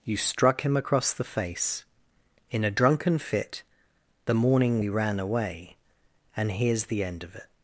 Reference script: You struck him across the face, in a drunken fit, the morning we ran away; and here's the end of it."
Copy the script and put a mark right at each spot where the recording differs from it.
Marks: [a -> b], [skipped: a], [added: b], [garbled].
You struck him across the face, in a drunken fit, the morning we ran away; and here's the end of it."